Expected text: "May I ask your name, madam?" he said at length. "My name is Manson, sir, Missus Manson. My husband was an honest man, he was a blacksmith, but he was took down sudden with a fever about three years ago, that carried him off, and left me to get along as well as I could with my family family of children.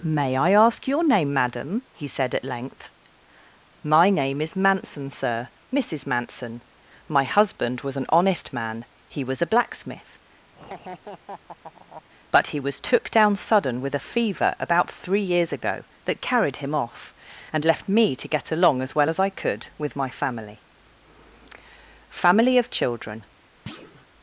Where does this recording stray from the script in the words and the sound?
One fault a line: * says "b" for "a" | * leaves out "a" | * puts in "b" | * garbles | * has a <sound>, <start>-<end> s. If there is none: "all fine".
* has a laugh, 10.5-12.0 s
* has a thud, 23.7-24.1 s